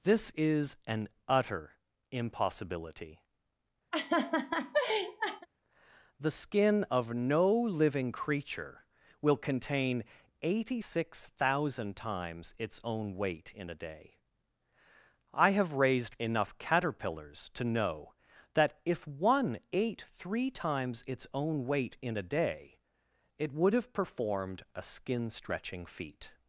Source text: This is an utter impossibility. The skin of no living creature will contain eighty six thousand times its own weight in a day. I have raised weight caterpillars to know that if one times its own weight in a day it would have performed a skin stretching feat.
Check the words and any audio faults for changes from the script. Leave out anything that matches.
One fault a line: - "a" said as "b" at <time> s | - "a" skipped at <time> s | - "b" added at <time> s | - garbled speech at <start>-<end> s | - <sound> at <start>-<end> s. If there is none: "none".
- laugh at 3.9-5.5 s
- "weight" said as "enough" at 16.2 s
- "ate three" added at 19.7 s